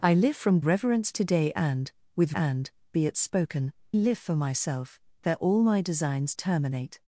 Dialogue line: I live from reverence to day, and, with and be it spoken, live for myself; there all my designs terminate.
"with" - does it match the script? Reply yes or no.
yes